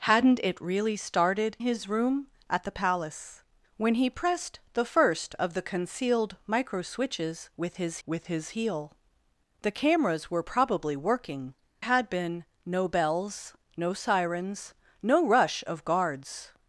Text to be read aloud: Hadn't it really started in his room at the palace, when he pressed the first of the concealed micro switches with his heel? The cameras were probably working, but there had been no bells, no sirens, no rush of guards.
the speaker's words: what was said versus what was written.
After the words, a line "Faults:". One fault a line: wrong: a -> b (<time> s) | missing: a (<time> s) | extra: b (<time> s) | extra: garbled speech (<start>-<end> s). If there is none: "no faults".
Hadn't it really started his room at the palace, when he pressed the first of the concealed micro switches with his with his heel? The cameras were probably working, had been no bells, no sirens, no rush of guards.
Faults:
missing: in (1.6 s)
extra: with his (8.0 s)
missing: but there (11.5 s)